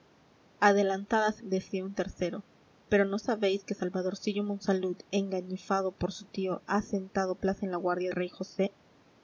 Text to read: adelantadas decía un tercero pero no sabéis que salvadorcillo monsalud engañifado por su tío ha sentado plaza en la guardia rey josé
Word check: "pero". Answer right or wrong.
right